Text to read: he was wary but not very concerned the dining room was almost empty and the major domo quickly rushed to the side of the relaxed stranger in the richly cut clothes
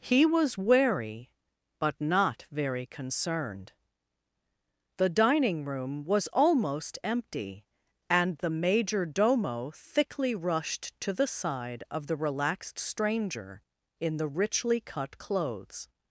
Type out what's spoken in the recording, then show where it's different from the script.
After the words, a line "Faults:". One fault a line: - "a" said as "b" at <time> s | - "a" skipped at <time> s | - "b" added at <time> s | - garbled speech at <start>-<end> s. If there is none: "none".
he was wary but not very concerned the dining room was almost empty and the major domo thickly rushed to the side of the relaxed stranger in the richly cut clothes
Faults:
- "quickly" said as "thickly" at 9.7 s